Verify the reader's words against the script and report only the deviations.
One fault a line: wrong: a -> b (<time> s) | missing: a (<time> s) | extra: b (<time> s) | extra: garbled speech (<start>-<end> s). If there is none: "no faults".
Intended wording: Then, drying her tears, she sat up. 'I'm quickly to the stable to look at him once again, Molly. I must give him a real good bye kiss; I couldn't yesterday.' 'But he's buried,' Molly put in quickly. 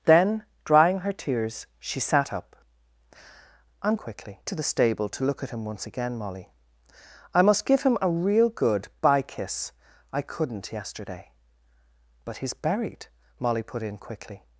no faults